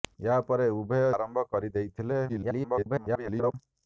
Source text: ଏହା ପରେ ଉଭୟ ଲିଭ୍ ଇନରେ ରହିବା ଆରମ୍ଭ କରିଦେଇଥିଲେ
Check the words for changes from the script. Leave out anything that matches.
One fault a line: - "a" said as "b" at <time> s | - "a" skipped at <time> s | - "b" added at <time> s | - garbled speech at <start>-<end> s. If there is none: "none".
- "ଲିଭ୍ ଇନରେ ରହିବା" skipped at 1.0 s
- garbled speech at 2.3-3.5 s